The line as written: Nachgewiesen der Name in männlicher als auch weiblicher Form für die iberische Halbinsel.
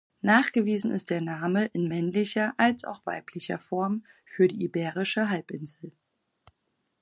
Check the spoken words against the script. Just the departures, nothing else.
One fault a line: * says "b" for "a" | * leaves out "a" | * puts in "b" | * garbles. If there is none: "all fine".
* puts in "ist"